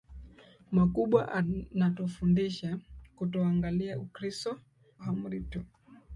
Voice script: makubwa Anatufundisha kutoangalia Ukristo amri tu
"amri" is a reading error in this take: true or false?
false